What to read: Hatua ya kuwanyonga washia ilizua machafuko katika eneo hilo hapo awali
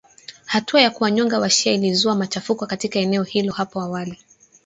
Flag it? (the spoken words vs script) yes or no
no